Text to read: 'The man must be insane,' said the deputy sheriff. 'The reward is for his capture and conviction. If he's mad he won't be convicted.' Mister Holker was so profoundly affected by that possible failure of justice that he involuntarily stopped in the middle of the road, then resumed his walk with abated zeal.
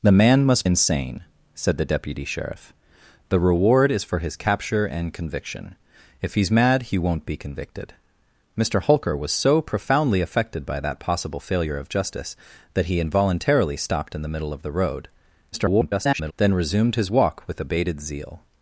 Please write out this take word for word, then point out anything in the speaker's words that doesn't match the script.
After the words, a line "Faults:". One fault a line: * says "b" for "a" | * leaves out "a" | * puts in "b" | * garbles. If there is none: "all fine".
'The man must insane,' said the deputy sheriff. 'The reward is for his capture and conviction. If he's mad he won't be convicted.' Mister Holker was so profoundly affected by that possible failure of justice that he involuntarily stopped in the middle of the road, [garbled] then resumed his walk with abated zeal.
Faults:
* leaves out "be"
* garbles